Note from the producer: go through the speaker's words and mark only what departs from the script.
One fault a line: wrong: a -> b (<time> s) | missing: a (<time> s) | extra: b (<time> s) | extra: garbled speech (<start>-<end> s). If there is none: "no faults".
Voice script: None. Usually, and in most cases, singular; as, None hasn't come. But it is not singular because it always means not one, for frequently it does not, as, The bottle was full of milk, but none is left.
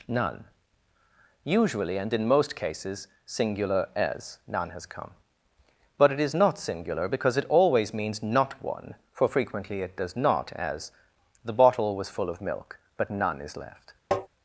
wrong: hasn't -> has (4.7 s)